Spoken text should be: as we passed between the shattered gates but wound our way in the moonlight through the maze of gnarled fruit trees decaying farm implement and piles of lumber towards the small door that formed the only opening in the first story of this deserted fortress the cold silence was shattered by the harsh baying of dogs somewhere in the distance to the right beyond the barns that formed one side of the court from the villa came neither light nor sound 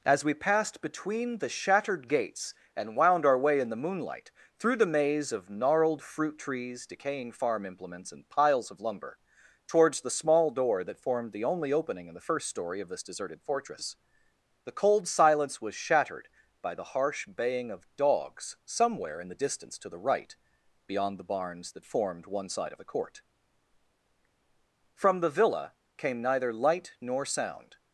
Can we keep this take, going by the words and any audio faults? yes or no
no